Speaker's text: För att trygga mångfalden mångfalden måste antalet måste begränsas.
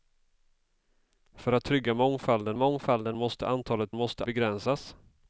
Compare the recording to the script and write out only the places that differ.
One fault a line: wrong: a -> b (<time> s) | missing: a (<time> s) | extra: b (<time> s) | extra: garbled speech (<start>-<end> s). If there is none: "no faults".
no faults